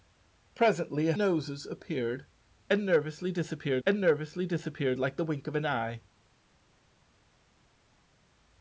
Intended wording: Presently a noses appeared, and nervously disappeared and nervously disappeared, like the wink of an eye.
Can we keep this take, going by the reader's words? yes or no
yes